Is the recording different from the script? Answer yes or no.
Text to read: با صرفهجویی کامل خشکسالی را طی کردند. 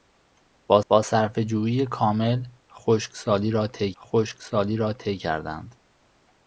yes